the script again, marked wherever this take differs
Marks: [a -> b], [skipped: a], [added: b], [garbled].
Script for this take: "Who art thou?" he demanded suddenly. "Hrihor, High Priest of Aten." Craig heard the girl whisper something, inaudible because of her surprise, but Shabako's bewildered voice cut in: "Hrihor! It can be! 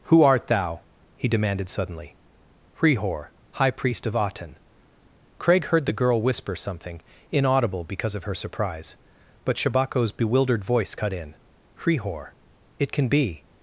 "Who art thou?" he demanded suddenly. "Hrihor, High Priest of Aten." Craig heard the girl whisper something, inaudible because of her surprise, but Shabako's bewildered voice cut in: "Hrihor! It can be!